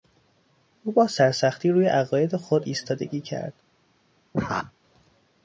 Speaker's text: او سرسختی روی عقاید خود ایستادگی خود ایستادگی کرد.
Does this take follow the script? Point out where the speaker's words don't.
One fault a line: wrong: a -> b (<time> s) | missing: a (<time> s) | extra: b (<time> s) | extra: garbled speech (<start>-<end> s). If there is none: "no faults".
extra: با (0.9 s)
missing: خود ایستادگی (3.2 s)